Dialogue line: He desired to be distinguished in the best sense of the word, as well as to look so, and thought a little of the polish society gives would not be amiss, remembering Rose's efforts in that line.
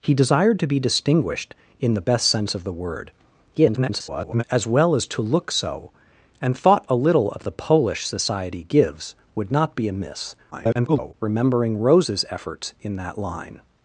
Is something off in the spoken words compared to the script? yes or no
yes